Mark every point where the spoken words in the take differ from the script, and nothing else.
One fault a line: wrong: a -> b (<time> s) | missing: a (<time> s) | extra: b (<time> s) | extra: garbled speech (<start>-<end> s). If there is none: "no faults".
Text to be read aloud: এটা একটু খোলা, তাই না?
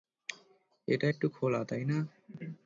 no faults